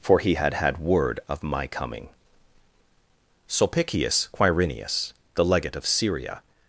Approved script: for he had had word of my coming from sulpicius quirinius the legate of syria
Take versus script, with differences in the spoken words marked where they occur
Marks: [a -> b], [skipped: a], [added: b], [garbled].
for he had had word of my coming [skipped: from] sulpicius quirinius the legate of syria